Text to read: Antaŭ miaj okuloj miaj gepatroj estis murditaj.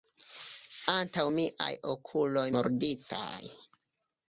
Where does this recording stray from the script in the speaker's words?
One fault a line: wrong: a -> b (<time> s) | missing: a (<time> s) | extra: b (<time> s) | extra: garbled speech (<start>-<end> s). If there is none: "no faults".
missing: miaj gepatroj estis (2.4 s)